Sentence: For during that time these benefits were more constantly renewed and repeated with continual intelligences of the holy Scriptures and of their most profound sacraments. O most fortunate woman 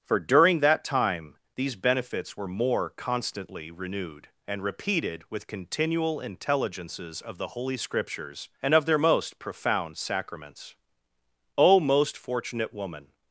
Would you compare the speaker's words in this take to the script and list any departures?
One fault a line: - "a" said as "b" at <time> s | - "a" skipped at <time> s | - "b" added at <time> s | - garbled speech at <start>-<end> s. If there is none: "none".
none